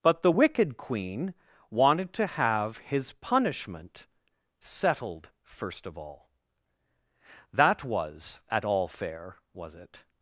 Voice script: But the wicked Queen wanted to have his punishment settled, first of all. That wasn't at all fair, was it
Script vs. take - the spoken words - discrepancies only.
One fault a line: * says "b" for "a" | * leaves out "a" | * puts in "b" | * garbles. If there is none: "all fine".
* says "was" for "wasn't"